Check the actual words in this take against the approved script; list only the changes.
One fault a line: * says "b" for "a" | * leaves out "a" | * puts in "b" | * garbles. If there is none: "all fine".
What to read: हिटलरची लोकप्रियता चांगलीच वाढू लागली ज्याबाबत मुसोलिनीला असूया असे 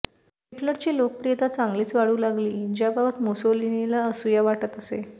* puts in "वाटत"